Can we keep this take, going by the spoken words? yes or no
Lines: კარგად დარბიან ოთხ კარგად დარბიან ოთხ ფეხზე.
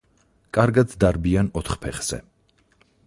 no